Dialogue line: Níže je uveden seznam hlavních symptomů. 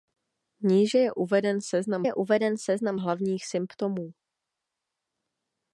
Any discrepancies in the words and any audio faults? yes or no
yes